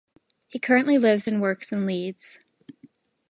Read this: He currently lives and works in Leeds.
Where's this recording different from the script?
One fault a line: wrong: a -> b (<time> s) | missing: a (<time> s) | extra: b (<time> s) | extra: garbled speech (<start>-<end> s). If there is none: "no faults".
no faults